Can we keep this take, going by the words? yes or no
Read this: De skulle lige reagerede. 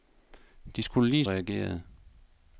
yes